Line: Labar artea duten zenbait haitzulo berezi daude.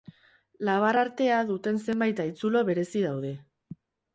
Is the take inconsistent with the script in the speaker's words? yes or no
no